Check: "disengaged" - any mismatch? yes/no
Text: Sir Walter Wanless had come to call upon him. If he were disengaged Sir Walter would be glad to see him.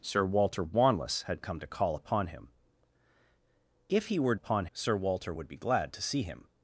yes